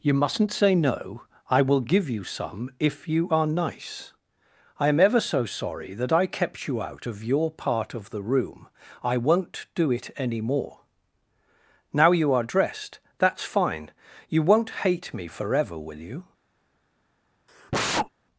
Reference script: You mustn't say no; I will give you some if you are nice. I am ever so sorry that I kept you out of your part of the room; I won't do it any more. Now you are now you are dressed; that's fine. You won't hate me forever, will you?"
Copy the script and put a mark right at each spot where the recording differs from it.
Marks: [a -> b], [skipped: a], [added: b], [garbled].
You mustn't say no; I will give you some if you are nice. I am ever so sorry that I kept you out of your part of the room; I won't do it any more. Now you are [skipped: now you are] dressed; that's fine. You won't hate me forever, will you?"